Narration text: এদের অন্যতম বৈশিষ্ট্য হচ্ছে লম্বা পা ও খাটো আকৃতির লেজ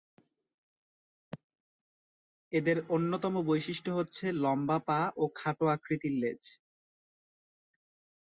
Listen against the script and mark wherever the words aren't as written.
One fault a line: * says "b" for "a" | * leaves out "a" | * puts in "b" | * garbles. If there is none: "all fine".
all fine